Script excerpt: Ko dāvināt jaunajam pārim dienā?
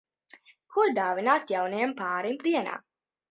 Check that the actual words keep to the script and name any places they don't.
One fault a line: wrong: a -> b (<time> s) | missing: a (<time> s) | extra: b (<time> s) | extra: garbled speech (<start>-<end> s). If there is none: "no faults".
no faults